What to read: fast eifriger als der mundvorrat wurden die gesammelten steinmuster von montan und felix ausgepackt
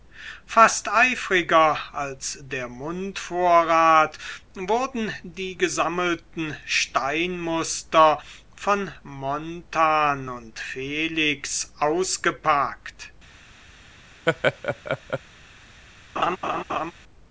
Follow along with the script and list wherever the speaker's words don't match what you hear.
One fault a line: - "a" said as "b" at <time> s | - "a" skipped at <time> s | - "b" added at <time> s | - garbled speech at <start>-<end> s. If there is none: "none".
none